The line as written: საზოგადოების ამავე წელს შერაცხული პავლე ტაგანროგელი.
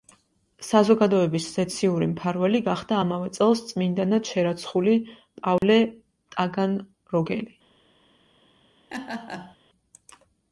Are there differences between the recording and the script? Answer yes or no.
yes